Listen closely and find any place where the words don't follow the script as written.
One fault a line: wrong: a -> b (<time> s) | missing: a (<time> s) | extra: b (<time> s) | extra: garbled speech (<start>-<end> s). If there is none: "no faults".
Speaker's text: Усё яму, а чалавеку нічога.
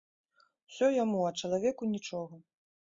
no faults